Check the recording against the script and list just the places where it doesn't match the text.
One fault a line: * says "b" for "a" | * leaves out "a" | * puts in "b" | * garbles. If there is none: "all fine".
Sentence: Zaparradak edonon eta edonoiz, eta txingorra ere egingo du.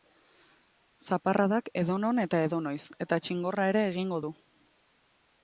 all fine